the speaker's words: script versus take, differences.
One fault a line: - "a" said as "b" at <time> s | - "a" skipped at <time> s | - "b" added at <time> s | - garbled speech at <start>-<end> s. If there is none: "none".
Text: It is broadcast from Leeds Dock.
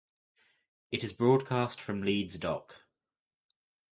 none